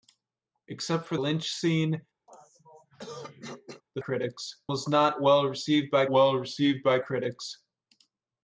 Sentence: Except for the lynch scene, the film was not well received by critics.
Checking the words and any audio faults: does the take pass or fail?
fail